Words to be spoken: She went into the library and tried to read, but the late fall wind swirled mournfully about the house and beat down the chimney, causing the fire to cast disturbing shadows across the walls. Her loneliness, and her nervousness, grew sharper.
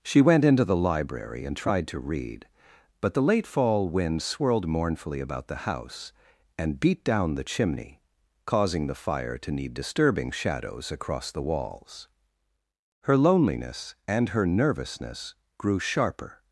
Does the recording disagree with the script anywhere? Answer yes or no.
yes